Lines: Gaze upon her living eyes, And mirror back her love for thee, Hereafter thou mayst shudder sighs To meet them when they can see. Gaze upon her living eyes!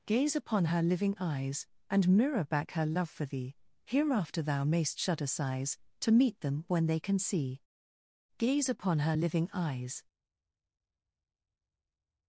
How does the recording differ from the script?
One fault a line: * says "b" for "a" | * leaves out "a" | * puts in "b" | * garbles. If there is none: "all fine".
all fine